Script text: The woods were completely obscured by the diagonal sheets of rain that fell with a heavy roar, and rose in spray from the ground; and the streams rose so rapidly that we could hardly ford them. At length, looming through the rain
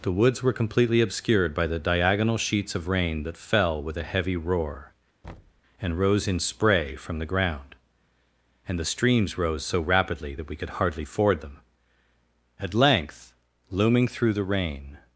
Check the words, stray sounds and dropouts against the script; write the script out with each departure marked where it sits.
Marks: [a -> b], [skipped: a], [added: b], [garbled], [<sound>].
The woods were completely obscured by the diagonal sheets of rain that fell with a heavy roar, [thud] and rose in spray from the ground; and the streams rose so rapidly that we could hardly ford them. At length, looming through the rain